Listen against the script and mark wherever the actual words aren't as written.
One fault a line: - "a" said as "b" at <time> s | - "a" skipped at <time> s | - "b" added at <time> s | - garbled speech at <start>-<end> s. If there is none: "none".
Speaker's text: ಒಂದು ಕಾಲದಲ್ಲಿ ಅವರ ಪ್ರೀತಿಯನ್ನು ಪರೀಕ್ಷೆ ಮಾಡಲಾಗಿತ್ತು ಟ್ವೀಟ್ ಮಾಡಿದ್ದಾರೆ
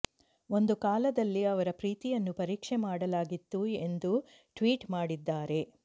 - "ಎಂದು" added at 3.8 s